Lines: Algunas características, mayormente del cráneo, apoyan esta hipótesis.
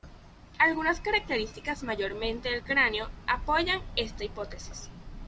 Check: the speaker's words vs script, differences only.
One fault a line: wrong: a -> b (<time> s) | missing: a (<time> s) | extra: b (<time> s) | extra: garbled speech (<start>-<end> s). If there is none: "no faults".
no faults